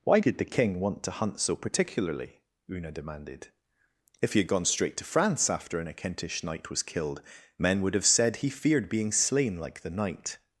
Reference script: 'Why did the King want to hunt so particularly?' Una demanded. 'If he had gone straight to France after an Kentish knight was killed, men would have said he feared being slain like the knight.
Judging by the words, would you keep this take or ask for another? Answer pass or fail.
pass